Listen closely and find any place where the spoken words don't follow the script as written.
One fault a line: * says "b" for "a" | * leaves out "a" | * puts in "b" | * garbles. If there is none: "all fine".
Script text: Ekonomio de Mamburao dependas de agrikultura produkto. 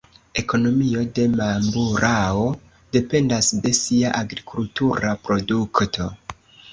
* puts in "sia"